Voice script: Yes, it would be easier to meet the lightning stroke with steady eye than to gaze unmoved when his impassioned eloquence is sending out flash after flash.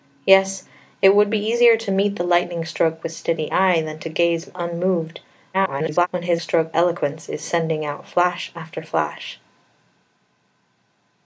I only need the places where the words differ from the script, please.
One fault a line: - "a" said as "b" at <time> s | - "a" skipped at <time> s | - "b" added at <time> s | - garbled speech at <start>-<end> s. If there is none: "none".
- garbled speech at 5.5-6.1 s
- "impassioned" said as "stroke" at 6.4 s